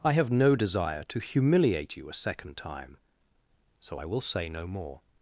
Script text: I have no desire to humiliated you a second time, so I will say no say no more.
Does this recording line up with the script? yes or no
no